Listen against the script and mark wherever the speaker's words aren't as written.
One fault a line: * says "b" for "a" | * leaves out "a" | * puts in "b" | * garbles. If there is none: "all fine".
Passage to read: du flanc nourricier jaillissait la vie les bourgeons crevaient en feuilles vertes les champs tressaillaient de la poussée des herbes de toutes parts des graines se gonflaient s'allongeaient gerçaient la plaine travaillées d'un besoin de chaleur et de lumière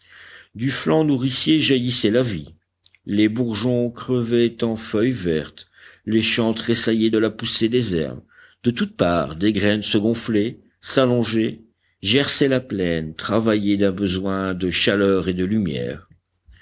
all fine